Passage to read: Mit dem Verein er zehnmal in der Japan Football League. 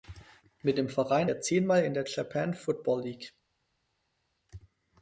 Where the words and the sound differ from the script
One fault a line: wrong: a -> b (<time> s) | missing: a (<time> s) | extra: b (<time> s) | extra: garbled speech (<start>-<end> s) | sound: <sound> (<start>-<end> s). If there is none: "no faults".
no faults